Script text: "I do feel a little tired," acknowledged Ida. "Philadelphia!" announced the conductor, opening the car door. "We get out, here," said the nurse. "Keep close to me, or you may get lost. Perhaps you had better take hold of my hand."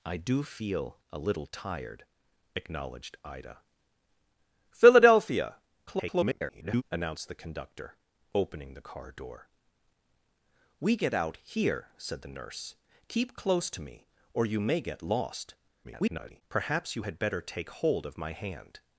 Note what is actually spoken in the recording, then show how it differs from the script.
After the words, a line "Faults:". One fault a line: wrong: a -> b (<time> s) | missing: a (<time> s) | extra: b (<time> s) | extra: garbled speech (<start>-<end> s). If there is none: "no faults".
"I do feel a little tired," acknowledged Ida. "Philadelphia!" [garbled] announced the conductor, opening the car door. "We get out, here," said the nurse. "Keep close to me, or you may get lost. [garbled] Perhaps you had better take hold of my hand."
Faults:
extra: garbled speech (5.9-6.8 s)
extra: garbled speech (15.8-16.4 s)